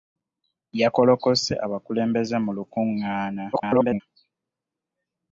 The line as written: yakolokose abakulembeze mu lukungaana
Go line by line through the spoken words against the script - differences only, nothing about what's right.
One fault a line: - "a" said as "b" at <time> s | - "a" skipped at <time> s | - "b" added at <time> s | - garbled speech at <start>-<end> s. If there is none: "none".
- garbled speech at 3.5-4.0 s